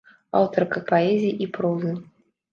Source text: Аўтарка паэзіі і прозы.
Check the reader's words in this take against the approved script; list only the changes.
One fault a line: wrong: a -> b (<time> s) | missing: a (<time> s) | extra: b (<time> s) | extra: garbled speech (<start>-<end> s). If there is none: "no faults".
no faults